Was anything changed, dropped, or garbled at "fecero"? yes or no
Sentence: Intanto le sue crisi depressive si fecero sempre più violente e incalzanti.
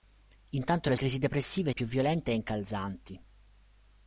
yes